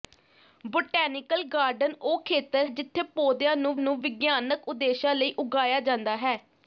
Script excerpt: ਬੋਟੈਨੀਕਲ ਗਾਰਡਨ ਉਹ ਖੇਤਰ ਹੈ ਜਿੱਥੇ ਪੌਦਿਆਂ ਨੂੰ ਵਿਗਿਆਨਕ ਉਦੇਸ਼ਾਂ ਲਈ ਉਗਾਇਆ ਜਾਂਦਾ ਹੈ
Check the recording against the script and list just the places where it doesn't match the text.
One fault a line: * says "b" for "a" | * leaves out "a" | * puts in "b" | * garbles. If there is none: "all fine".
* leaves out "ਹੈ"
* puts in "ਨੂੰ"